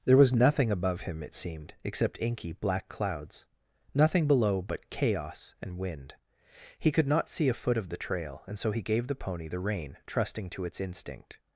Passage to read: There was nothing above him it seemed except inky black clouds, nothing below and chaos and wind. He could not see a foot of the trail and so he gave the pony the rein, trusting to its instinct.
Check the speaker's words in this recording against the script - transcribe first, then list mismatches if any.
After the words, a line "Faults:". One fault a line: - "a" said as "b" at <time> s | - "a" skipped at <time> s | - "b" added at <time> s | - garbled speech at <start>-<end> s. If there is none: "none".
There was nothing above him it seemed except inky black clouds, nothing below but chaos and wind. He could not see a foot of the trail and so he gave the pony the rein, trusting to its instinct.
Faults:
- "and" said as "but" at 4.6 s